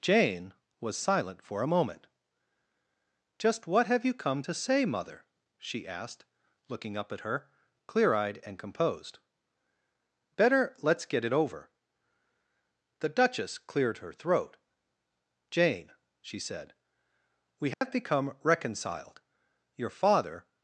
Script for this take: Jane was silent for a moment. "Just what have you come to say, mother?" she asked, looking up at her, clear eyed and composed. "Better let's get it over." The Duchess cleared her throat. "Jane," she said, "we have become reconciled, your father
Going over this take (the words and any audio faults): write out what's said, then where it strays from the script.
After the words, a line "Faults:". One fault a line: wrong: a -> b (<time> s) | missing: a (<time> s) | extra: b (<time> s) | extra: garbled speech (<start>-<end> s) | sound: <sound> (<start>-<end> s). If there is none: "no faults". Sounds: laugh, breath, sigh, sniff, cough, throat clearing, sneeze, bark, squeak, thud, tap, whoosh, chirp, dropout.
Jane was silent for a moment. "Just what have you come to say, mother?" she asked, looking up at her, clear eyed and composed. "Better let's get it over." The Duchess cleared her throat. "Jane," she said, "we have become reconciled, your father
Faults:
sound: dropout (17.7-17.8 s)